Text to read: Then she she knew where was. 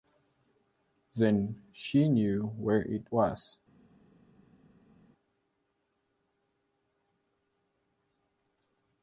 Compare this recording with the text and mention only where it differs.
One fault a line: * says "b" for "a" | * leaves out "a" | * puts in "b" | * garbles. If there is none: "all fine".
* leaves out "she"
* puts in "it"